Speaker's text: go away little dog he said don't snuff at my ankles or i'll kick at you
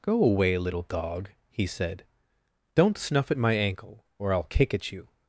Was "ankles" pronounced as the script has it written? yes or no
no